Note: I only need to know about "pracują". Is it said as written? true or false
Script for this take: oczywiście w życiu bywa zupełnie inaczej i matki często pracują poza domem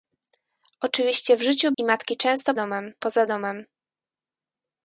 false